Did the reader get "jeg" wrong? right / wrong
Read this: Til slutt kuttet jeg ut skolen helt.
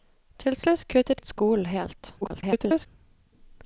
wrong